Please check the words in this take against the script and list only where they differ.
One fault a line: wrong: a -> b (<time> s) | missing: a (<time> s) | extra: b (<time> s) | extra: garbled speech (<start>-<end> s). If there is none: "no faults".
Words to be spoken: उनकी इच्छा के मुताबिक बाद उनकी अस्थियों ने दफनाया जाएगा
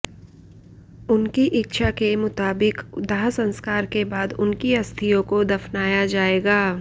extra: दाह संस्कार के (3.0 s)
wrong: ने -> को (5.2 s)